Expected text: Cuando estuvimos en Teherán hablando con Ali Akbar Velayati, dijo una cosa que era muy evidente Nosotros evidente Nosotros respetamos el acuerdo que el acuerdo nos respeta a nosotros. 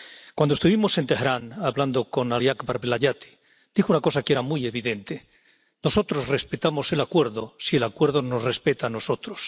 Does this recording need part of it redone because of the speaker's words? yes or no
yes